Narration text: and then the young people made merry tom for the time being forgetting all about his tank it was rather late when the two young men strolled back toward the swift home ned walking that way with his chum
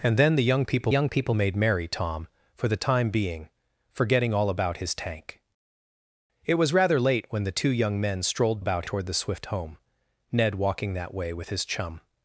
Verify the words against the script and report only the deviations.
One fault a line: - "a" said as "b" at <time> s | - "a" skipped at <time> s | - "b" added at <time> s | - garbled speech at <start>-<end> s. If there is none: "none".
- "young people" added at 0.9 s
- "back" said as "about" at 8.6 s